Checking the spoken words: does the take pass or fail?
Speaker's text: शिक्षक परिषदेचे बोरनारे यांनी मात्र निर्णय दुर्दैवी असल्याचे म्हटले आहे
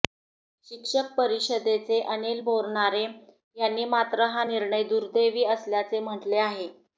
fail